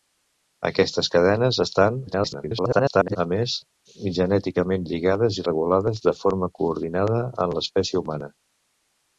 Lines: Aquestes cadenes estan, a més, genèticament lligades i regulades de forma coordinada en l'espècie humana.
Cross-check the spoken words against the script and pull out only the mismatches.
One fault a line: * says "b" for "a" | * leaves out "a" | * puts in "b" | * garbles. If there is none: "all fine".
* garbles